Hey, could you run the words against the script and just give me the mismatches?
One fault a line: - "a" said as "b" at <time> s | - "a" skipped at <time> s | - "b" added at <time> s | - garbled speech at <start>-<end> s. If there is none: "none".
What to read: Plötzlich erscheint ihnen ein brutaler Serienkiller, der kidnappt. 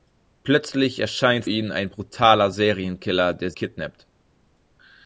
none